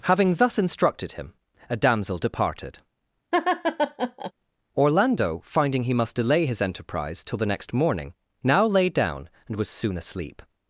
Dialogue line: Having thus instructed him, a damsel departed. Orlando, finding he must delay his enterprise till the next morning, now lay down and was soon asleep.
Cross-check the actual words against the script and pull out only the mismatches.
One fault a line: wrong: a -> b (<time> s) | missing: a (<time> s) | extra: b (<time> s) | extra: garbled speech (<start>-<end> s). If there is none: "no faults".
no faults